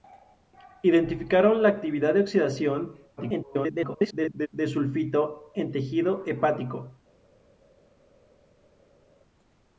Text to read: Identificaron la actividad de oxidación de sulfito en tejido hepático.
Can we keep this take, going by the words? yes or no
no